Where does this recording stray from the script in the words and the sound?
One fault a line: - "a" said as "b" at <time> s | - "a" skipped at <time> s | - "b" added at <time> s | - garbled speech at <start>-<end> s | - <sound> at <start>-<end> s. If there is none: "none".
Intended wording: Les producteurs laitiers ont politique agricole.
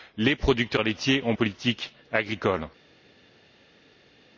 none